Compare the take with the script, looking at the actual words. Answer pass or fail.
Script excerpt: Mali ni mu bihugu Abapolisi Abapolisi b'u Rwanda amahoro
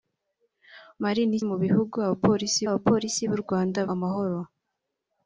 pass